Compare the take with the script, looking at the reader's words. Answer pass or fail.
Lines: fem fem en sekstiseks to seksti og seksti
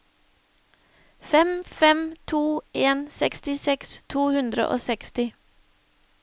fail